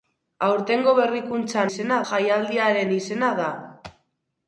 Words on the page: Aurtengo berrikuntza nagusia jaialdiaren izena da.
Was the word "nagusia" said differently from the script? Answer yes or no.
yes